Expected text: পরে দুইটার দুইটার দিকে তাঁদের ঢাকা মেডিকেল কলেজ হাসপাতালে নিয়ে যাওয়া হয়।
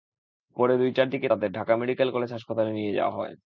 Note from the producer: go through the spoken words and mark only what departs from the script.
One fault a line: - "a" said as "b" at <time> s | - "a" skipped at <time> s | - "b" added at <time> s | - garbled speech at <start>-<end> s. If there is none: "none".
- "দুইটার" skipped at 1.1 s